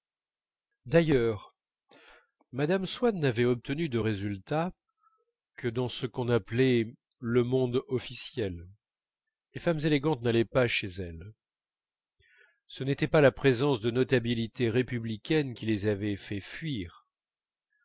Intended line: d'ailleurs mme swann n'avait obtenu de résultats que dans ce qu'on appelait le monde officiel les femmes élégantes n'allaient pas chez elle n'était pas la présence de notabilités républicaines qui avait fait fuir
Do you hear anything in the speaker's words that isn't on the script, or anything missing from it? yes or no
yes